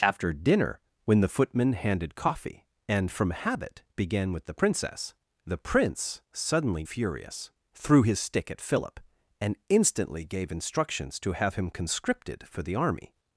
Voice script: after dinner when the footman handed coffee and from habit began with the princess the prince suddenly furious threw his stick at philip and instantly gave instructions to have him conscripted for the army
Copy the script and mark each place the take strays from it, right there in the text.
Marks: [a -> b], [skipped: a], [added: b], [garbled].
after dinner when the footman handed coffee and from habit began with the princess the prince suddenly furious threw his stick at philip and instantly gave instructions to have him conscripted for the army